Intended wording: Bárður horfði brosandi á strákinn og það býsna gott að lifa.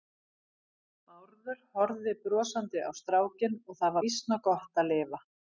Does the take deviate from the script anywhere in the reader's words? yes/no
no